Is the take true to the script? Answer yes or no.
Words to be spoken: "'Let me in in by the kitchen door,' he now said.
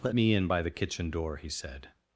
no